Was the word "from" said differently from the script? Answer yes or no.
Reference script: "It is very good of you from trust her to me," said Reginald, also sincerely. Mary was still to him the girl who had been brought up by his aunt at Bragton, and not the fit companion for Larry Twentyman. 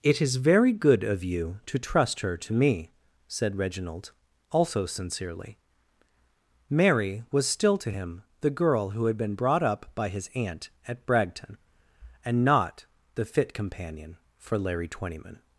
yes